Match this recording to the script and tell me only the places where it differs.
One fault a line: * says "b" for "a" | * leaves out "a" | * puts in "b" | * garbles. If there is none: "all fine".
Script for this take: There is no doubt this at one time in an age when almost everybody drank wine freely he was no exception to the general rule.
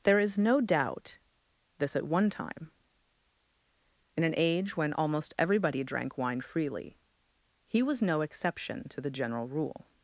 all fine